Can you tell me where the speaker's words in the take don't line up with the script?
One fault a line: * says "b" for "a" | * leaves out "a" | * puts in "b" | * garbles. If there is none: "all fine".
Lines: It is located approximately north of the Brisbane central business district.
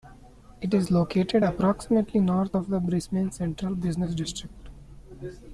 all fine